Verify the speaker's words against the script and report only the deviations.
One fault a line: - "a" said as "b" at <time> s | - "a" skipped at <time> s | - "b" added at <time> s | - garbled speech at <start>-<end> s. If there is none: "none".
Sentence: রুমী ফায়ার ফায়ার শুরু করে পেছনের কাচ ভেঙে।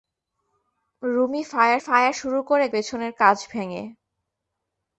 none